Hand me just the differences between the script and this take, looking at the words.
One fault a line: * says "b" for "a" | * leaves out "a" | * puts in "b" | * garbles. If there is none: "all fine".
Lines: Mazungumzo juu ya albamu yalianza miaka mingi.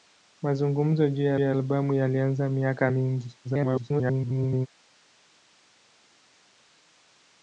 * puts in "ya"
* garbles